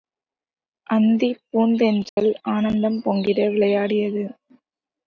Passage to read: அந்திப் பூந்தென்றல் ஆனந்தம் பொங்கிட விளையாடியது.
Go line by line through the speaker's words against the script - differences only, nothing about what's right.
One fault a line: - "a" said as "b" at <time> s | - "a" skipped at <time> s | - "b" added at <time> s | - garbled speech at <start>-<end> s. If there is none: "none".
none